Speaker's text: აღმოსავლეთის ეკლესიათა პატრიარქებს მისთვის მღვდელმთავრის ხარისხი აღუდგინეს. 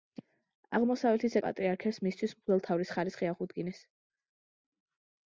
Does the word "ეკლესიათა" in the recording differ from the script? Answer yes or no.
yes